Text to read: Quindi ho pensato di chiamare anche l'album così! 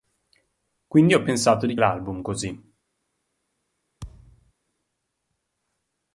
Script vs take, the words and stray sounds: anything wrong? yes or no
yes